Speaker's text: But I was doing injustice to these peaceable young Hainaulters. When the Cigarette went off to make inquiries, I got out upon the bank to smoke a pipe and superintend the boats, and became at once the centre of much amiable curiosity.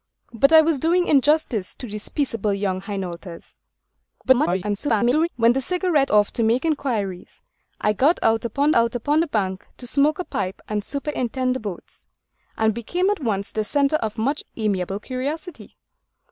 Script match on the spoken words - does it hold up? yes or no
no